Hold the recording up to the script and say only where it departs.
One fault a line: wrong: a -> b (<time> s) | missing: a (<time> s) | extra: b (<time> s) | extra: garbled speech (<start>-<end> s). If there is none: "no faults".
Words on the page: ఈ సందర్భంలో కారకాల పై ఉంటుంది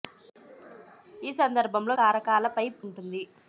no faults